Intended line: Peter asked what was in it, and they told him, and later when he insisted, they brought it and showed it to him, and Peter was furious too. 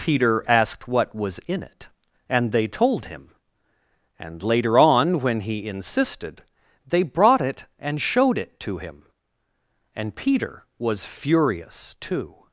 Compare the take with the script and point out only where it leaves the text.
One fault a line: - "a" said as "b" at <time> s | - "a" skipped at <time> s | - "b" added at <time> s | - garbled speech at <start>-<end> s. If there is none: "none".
- "on" added at 4.8 s